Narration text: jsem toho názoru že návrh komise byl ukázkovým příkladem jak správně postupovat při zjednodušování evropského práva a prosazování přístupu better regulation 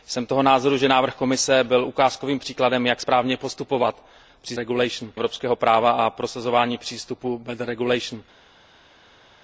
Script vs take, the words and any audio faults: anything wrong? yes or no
yes